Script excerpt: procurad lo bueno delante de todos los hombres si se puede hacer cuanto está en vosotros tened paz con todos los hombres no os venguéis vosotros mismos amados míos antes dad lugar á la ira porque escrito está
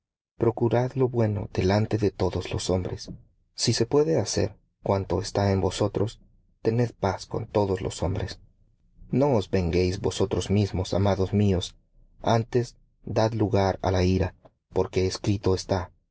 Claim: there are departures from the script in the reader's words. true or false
false